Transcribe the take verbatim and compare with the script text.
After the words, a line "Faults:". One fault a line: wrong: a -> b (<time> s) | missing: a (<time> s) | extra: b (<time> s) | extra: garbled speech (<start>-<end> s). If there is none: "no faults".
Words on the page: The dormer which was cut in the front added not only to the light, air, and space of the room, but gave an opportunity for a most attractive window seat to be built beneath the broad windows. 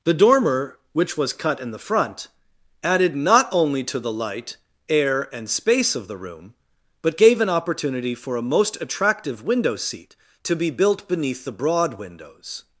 The dormer which was cut in the front added not only to the light, air, and space of the room, but gave an opportunity for a most attractive window seat to be built beneath the broad windows.
Faults:
no faults